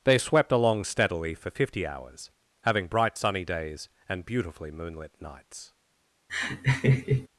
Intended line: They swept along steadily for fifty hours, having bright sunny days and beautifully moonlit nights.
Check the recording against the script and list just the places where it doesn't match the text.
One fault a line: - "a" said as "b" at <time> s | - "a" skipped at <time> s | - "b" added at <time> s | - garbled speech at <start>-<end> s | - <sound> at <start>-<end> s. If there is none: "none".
- laugh at 6.3-7.3 s